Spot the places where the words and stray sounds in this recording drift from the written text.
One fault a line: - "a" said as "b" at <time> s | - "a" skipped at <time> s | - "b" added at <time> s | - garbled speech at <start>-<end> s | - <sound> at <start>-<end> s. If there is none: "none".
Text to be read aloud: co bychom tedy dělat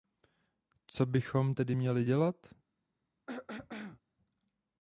- "měli" added at 1.7 s
- throat clearing at 3.3-4.0 s